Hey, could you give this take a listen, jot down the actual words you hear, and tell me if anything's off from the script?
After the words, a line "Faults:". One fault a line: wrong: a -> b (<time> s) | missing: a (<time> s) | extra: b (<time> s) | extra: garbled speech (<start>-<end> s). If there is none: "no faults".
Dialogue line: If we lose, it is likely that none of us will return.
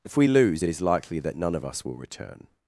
If we lose, it is likely that none of us will return.
Faults:
no faults